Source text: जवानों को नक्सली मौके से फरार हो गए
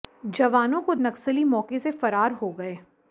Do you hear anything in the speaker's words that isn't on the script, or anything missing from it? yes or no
no